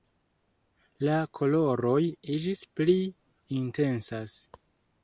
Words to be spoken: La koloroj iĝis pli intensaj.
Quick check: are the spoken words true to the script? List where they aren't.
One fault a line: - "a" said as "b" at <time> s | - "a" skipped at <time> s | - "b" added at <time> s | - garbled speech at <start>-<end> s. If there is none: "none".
none